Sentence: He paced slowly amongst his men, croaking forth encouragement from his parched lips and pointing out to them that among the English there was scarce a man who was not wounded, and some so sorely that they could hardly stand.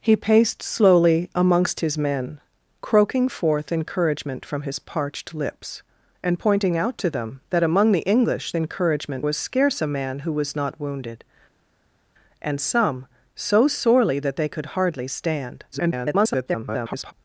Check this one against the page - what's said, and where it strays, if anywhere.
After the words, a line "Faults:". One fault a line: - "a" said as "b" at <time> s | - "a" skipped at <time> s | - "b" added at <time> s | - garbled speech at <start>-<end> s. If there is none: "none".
He paced slowly amongst his men, croaking forth encouragement from his parched lips and pointing out to them that among the English encouragement was scarce a man who was not wounded, and some so sorely that they could hardly stand. [garbled]
Faults:
- "there" said as "encouragement" at 8.5 s
- garbled speech at 15.7-17.1 s